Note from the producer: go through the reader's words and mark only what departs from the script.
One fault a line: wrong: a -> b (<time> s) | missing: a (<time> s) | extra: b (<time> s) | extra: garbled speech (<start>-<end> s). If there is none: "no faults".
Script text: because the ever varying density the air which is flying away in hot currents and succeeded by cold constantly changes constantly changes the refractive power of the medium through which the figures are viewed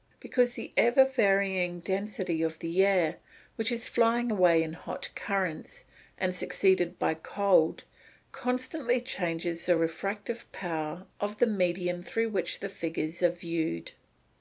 extra: of (2.4 s)
missing: constantly changes (9.6 s)